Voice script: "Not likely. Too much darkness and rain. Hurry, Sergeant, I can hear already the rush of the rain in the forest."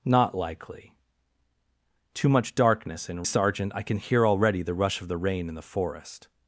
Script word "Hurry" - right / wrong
wrong